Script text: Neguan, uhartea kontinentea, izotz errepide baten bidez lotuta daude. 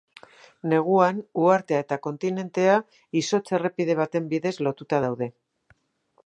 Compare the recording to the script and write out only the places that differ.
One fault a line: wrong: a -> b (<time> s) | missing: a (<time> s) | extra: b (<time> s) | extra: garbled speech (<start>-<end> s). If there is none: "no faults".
extra: eta (1.8 s)